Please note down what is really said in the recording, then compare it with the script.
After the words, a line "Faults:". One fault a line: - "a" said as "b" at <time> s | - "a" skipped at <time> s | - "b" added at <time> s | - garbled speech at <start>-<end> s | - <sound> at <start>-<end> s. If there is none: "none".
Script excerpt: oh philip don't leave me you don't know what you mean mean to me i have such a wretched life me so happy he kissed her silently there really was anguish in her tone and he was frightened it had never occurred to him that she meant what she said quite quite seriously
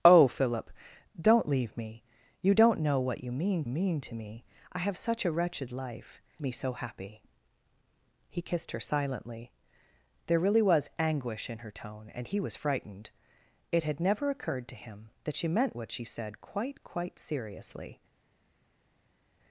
oh philip don't leave me you don't know what you mean mean to me i have such a wretched life me so happy he kissed her silently there really was anguish in her tone and he was frightened it had never occurred to him that she meant what she said quite quite seriously
Faults:
none